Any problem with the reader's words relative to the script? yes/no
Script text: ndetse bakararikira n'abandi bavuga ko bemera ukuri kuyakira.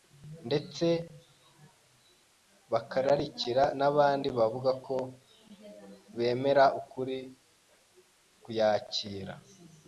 no